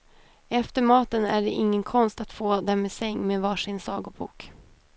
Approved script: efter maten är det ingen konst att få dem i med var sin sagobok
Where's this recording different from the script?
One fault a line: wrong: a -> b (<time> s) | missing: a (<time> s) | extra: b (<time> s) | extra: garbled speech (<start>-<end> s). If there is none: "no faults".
extra: säng (2.9 s)